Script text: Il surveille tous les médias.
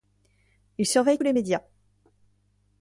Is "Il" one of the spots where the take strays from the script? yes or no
no